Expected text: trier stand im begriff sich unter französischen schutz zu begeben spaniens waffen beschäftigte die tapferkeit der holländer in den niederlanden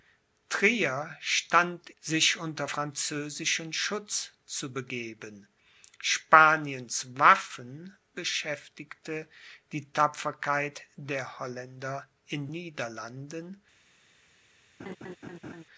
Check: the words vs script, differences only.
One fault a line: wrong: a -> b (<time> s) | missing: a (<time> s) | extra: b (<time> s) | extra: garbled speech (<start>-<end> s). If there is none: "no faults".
missing: im begriff (1.9 s)
missing: den (12.5 s)